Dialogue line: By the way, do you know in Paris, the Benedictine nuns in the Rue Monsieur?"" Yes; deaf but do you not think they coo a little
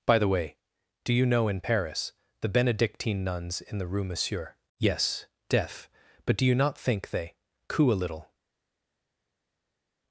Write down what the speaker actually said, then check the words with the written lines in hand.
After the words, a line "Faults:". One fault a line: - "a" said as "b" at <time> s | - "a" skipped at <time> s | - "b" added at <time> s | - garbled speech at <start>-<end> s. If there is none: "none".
By the way, do you know in Paris, the Benedictine nuns in the Rue Monsieur?"" Yes; deaf but do you not think they coo a little
Faults:
none